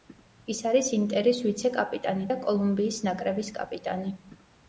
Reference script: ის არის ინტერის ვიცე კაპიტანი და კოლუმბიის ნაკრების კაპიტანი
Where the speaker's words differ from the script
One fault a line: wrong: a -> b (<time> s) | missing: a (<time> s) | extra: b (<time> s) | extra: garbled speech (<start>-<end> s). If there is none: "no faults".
no faults